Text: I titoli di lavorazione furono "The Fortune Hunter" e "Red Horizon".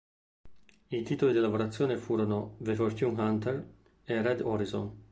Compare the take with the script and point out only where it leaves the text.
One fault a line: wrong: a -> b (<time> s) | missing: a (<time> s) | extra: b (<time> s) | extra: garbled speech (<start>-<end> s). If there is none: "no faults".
no faults